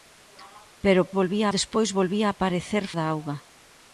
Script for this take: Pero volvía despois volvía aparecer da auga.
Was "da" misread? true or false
false